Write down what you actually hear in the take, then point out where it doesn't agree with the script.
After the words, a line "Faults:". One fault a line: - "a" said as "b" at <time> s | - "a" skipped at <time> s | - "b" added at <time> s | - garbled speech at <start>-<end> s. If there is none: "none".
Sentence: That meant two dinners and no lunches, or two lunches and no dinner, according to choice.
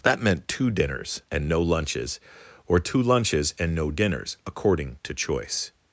That meant two dinners and no lunches, or two lunches and no dinners, according to choice.
Faults:
- "dinner" said as "dinners" at 3.9 s